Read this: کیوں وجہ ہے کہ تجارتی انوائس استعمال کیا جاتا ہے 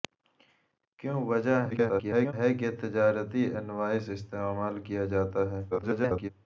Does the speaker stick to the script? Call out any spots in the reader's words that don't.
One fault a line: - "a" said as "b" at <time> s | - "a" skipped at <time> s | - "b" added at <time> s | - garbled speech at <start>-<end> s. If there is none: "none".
- garbled speech at 1.7-2.3 s
- garbled speech at 5.7-6.3 s